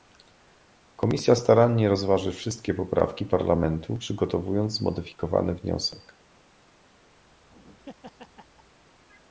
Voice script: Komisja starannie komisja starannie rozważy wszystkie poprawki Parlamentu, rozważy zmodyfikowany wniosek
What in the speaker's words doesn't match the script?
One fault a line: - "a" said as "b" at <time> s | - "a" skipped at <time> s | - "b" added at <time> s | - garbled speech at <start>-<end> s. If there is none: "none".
- "komisja starannie" skipped at 1.9 s
- "rozważy" said as "przygotowując" at 3.9 s